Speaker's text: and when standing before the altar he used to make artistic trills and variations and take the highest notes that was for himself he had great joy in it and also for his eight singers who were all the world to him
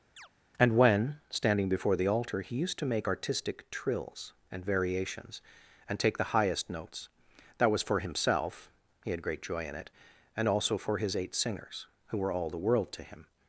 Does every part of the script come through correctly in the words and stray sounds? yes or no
no